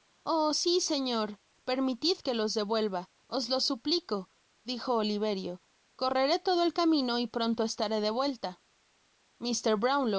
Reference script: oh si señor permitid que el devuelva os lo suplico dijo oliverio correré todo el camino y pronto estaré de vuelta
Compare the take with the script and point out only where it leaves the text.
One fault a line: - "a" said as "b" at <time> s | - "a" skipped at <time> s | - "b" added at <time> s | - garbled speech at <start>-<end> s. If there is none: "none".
- "el" said as "los" at 2.3 s